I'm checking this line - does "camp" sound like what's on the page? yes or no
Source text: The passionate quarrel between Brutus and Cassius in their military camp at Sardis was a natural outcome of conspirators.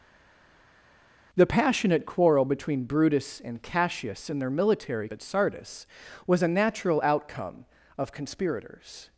no